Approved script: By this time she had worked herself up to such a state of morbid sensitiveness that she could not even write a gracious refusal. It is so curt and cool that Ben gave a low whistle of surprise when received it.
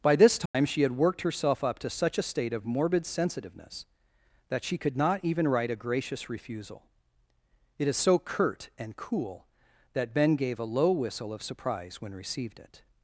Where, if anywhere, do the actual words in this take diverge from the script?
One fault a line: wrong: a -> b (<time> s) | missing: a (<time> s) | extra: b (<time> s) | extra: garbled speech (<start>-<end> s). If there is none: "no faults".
no faults